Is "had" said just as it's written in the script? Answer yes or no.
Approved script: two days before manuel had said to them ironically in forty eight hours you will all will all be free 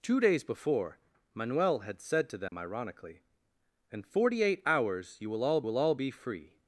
yes